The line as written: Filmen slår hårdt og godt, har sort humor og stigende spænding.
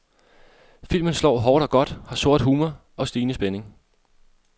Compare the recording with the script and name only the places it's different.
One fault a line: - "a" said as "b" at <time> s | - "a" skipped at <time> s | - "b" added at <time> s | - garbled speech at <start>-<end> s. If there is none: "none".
none